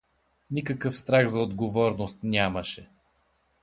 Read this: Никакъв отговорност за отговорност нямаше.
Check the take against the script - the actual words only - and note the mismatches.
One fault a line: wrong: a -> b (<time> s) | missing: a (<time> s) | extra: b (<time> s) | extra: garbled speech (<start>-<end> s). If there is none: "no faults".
wrong: отговорност -> страх (1.0 s)